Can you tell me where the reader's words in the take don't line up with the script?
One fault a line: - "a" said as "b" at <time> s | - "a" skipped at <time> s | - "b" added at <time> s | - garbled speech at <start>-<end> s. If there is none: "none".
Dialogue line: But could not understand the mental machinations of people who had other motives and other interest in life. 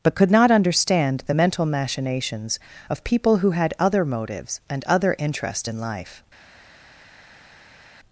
none